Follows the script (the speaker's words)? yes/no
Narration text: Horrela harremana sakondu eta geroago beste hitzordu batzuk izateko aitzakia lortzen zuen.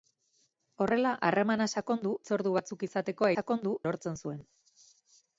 no